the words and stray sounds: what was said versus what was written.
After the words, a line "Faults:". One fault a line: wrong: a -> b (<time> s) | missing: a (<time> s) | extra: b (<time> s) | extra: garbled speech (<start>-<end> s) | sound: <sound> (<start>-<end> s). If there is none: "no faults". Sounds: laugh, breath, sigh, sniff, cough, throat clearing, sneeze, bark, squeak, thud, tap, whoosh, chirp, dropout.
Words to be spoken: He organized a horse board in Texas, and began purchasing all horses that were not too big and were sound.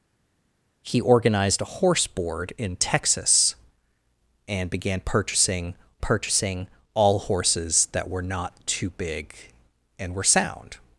He organized a horse board in Texas, and began purchasing purchasing all horses that were not too big and were sound.
Faults:
extra: purchasing (6.0 s)